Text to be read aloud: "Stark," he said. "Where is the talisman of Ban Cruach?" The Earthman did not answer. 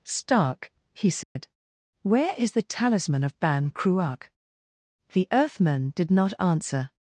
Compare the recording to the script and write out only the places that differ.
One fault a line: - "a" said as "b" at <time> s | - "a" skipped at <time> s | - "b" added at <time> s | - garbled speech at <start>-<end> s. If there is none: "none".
none